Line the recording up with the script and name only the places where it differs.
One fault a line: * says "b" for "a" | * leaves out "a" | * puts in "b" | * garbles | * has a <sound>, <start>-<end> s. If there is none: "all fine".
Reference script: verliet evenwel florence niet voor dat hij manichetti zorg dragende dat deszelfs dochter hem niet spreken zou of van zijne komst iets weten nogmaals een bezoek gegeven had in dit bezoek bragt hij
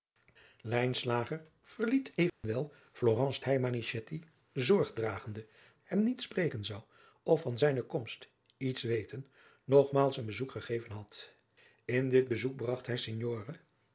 * has a dropout, 2.3-2.4 s
* leaves out "niet voor dat"
* leaves out "dat deszelfs dochter"